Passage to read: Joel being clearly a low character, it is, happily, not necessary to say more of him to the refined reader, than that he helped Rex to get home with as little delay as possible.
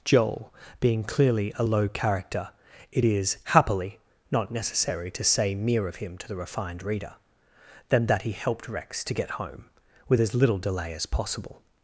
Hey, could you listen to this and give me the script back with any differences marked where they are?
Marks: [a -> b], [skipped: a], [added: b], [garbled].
Joel being clearly a low character, it is, happily, not necessary to say [more -> mere] of him to the refined reader, than that he helped Rex to get home with as little delay as possible.